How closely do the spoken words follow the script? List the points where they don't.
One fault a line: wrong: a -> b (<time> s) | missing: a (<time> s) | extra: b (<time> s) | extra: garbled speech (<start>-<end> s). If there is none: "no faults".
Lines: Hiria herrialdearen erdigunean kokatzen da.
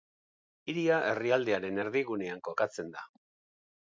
no faults